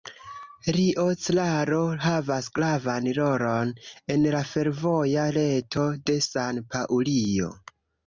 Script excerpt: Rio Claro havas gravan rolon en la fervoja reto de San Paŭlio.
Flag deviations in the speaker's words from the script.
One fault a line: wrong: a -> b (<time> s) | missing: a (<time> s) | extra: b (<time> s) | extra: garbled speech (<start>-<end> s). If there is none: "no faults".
no faults